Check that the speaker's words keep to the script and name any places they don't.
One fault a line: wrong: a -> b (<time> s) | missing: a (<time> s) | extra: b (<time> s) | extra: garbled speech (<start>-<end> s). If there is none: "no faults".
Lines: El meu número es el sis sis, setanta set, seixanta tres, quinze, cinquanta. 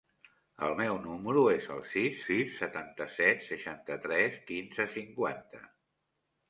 no faults